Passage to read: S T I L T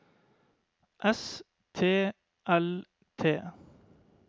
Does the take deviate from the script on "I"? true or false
true